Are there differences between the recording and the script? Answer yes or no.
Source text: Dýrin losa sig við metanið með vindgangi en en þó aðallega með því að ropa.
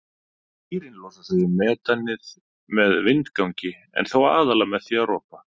yes